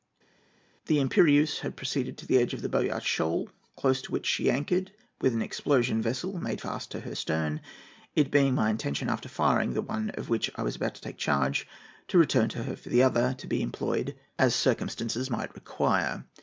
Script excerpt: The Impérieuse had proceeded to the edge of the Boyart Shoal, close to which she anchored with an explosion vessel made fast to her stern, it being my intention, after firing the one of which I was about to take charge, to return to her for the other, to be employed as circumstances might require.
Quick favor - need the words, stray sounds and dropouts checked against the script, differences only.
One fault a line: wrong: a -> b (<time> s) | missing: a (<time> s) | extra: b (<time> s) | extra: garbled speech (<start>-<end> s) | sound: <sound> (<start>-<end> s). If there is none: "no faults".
no faults